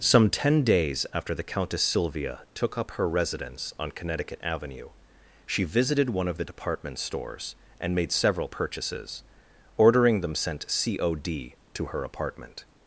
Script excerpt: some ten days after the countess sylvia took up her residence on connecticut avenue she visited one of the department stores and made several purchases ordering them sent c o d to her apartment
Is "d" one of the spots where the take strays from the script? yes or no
no